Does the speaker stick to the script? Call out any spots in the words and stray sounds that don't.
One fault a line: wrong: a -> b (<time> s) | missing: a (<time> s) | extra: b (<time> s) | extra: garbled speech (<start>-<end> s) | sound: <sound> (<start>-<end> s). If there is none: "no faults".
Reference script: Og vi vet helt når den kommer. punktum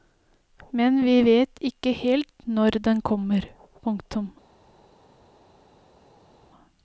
wrong: Og -> Men (0.8 s)
extra: ikke (1.7 s)